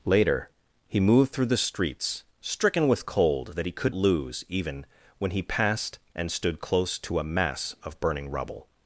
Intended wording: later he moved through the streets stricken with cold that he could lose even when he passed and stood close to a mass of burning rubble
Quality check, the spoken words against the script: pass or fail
pass